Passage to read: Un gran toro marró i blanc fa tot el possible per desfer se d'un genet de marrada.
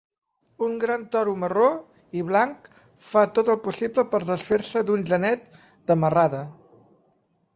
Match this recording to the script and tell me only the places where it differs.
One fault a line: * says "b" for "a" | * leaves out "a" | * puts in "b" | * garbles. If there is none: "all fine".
all fine